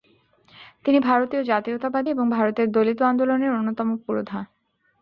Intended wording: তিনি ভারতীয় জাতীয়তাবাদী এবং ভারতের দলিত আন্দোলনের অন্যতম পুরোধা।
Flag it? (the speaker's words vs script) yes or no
no